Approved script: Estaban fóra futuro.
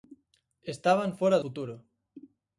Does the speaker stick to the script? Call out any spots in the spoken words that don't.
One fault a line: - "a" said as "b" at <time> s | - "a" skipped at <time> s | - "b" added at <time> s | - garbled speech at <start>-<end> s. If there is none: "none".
none